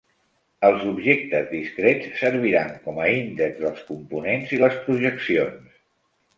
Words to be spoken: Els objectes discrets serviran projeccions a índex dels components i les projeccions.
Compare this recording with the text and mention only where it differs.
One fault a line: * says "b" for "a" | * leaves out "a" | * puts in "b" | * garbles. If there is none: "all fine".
* says "com" for "projeccions"